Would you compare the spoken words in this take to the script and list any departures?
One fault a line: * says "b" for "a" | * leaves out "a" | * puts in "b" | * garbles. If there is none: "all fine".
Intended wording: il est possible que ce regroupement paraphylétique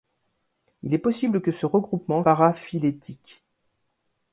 all fine